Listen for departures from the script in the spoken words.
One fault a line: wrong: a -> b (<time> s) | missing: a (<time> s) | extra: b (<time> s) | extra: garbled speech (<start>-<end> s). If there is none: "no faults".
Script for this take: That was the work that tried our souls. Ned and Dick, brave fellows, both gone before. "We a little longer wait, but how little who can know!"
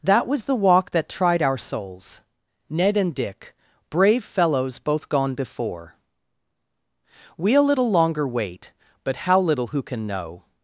wrong: work -> walk (0.6 s)